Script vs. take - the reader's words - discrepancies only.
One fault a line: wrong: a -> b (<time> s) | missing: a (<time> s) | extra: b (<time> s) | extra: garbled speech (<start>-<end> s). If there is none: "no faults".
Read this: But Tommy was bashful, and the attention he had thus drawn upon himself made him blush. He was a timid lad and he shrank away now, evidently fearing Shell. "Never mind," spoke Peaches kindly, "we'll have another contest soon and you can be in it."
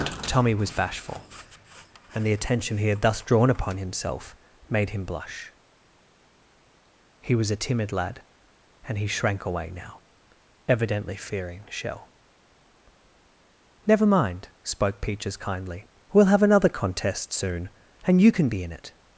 missing: But (0.2 s)